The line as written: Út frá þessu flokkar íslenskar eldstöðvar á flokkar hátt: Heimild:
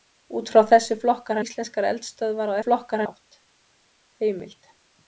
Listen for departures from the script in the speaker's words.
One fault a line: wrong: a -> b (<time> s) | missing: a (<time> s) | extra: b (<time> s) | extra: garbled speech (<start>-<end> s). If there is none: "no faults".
no faults